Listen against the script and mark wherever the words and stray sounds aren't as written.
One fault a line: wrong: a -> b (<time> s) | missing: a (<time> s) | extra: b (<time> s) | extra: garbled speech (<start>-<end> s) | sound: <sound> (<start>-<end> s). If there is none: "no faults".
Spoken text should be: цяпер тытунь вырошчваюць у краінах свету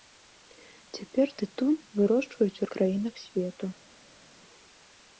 no faults